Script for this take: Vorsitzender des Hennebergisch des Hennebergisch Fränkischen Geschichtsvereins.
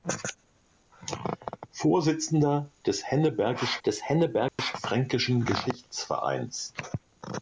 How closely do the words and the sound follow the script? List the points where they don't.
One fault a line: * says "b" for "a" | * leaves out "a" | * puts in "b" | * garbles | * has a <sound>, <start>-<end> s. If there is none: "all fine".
* has a dropout, 4.5-4.6 s